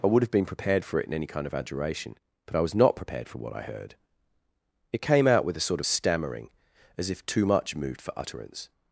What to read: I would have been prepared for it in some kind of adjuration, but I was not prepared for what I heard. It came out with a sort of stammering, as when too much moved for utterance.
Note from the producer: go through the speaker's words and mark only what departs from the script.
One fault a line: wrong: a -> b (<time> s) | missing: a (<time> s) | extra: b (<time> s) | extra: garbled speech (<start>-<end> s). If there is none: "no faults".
wrong: some -> any (1.1 s)
wrong: when -> if (7.1 s)